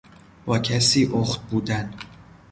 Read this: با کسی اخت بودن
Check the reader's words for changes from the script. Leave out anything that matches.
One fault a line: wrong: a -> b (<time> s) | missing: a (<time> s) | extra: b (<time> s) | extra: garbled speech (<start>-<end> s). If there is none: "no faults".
no faults